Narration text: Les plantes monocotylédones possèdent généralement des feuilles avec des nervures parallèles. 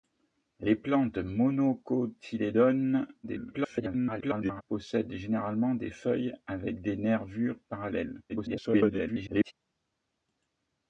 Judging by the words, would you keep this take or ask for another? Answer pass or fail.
fail